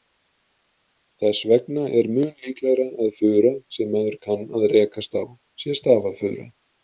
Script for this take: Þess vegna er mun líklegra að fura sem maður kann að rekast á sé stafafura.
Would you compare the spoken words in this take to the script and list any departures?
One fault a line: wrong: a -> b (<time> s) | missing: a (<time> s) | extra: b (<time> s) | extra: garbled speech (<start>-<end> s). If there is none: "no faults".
no faults